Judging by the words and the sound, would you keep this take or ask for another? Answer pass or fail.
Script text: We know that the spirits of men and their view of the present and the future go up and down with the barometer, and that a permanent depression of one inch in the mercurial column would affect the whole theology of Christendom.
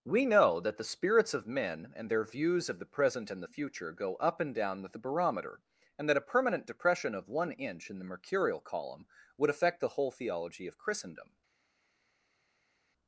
fail